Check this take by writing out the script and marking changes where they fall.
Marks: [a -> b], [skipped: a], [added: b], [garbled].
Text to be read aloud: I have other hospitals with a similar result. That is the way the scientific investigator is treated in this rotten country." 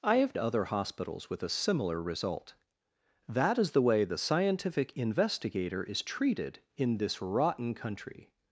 I have other hospitals with a similar result. That is the way the scientific investigator is treated in this rotten country."